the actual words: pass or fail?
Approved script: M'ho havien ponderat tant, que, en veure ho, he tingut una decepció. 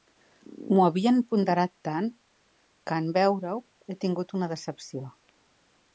pass